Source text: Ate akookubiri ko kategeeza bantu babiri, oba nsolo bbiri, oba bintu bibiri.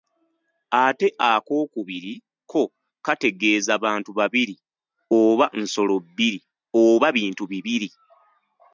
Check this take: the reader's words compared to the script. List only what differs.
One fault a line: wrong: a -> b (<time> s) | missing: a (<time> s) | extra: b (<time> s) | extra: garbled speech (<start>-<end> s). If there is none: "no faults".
no faults